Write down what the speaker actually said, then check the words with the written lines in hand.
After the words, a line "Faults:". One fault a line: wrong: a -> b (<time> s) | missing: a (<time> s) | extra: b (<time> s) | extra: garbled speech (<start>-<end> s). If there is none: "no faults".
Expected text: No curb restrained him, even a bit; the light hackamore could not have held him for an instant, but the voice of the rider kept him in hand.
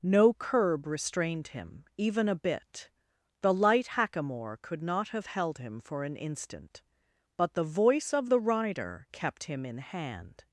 No curb restrained him, even a bit; the light hackamore could not have held him for an instant, but the voice of the rider kept him in hand.
Faults:
no faults